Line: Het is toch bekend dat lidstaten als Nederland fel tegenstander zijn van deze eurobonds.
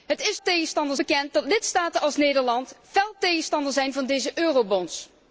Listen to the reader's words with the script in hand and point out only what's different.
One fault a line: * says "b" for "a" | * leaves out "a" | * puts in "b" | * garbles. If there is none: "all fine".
* says "tegenstander" for "toch"